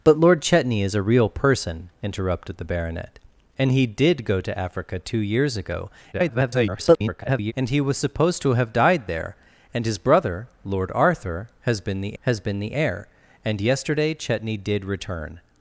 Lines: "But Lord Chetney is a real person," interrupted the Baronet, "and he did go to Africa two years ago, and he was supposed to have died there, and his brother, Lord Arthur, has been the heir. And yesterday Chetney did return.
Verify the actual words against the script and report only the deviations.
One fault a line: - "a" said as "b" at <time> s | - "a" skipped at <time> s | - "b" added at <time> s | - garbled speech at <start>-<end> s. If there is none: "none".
- garbled speech at 6.1-7.5 s
- "has been the" added at 12.2 s